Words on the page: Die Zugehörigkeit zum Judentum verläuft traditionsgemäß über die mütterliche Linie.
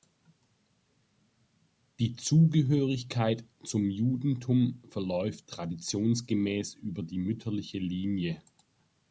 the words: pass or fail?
pass